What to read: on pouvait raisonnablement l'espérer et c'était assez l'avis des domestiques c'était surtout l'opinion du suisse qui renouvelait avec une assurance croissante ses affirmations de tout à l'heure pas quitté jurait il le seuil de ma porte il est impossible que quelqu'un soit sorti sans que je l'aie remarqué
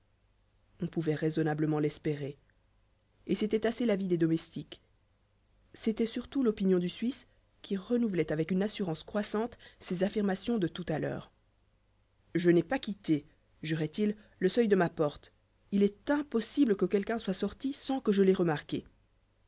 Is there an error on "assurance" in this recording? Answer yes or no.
no